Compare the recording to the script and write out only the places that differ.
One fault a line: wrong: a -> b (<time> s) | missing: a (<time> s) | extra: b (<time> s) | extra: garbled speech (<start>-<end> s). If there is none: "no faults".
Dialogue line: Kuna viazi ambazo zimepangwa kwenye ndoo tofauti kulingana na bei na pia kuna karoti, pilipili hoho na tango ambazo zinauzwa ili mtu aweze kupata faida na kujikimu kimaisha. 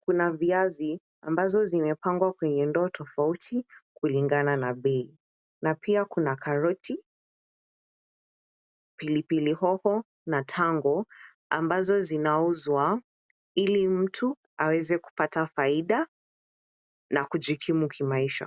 no faults